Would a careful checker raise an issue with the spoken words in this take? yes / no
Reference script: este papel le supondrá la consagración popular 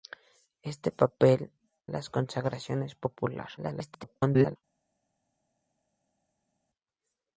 yes